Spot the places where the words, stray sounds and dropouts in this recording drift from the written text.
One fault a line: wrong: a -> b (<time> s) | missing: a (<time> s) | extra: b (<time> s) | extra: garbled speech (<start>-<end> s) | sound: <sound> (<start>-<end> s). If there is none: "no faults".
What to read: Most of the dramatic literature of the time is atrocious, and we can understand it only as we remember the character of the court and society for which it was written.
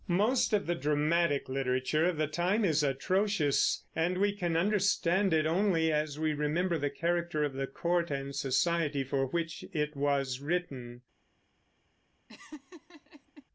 sound: laugh (12.3-13.4 s)